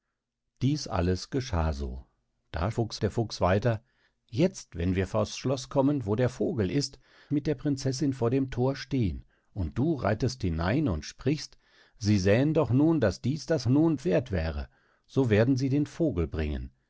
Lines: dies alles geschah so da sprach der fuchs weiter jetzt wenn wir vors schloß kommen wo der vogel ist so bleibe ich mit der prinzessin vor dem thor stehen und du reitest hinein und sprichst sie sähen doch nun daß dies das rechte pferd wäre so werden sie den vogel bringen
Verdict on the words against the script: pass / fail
fail